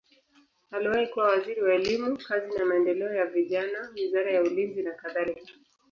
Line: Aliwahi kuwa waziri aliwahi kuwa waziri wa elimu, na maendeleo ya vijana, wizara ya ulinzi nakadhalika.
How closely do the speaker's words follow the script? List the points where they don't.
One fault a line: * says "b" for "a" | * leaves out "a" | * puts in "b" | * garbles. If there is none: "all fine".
* leaves out "aliwahi kuwa waziri"
* puts in "kazi"